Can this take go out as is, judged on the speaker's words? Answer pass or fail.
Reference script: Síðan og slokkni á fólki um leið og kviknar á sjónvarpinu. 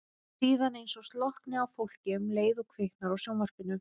fail